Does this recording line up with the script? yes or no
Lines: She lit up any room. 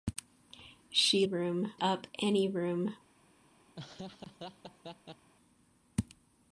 no